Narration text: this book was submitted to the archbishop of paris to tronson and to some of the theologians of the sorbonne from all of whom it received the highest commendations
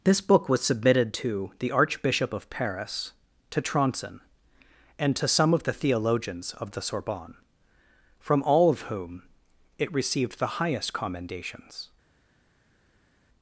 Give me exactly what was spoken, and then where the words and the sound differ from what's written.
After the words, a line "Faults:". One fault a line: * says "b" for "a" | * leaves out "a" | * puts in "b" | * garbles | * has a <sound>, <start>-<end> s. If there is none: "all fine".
this book was submitted to the archbishop of paris to tronson and to some of the theologians of the sorbonne from all of whom it received the highest commendations
Faults:
all fine